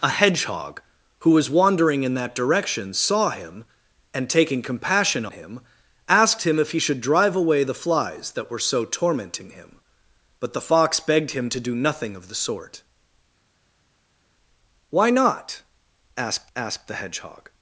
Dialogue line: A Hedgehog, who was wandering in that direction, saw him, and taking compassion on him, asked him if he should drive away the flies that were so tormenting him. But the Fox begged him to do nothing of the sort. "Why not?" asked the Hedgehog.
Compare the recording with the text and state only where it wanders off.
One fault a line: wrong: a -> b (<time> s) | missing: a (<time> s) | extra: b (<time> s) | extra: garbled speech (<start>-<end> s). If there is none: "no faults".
missing: on (5.3 s)
extra: asked (16.6 s)